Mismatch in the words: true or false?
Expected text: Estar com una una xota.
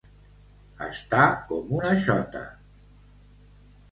true